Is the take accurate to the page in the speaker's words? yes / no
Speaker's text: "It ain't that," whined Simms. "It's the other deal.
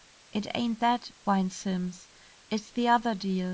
yes